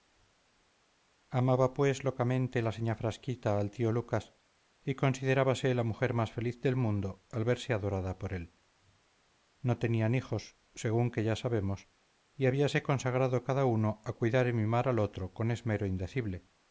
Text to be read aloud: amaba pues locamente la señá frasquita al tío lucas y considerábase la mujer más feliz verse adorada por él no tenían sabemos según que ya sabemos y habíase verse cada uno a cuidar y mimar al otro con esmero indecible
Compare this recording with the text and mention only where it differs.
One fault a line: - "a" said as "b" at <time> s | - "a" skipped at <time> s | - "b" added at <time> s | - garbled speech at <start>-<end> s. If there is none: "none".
- "del mundo al" added at 6.6 s
- "sabemos" said as "hijos" at 10.2 s
- "verse" said as "consagrado" at 12.8 s